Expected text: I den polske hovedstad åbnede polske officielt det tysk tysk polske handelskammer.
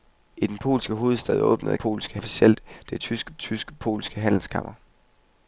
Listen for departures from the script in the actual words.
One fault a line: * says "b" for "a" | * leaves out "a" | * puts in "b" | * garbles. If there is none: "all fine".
all fine